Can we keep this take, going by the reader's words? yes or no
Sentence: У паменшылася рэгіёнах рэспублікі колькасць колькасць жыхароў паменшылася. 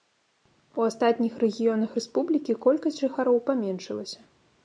no